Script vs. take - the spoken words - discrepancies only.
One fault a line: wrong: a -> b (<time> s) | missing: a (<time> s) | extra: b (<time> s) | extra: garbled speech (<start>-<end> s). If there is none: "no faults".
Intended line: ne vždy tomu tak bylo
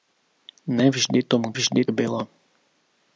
wrong: tak -> vždy (1.5 s)